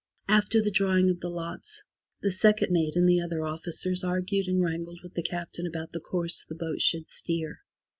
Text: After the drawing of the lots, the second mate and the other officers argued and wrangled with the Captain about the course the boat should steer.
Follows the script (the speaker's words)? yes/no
yes